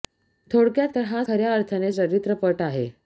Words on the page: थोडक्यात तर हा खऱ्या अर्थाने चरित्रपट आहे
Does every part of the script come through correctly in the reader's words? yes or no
yes